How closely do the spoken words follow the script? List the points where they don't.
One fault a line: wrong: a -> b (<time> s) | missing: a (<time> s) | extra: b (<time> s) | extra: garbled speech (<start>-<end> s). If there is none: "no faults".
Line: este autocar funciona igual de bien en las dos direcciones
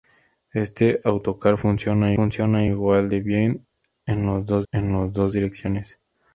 extra: funciona (2.1 s)
extra: en las dos (4.7 s)